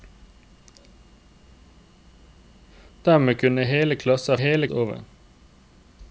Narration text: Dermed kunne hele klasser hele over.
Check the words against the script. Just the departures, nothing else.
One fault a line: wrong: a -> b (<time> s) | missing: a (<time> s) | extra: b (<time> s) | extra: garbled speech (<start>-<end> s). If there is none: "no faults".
no faults